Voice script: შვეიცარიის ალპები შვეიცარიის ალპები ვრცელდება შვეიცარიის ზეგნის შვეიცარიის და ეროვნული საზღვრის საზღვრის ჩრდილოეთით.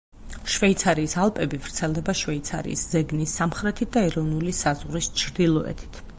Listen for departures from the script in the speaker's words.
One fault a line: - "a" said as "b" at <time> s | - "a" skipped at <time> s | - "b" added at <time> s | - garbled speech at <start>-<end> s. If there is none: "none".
- "შვეიცარიის ალპები" skipped at 1.6 s
- "შვეიცარიის" said as "სამხრეთით" at 3.4 s
- "საზღვრის" skipped at 5.1 s